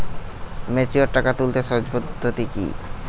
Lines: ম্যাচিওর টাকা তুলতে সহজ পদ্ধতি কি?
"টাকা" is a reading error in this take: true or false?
false